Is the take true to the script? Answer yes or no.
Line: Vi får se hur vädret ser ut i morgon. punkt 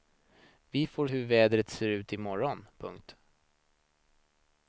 no